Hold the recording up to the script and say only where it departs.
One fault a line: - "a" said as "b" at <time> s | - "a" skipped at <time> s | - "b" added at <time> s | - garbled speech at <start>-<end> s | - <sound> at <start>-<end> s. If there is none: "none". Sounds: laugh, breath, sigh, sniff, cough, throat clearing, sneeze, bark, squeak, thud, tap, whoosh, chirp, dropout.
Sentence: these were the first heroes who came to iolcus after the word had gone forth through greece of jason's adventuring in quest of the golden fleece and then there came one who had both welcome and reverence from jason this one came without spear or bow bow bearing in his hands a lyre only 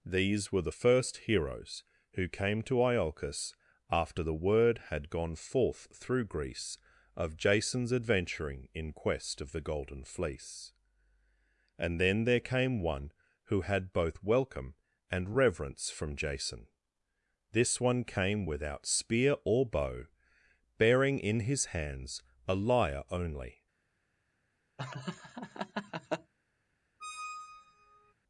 - "bow" skipped at 20.1 s
- laugh at 24.8-26.3 s
- squeak at 27.0-28.1 s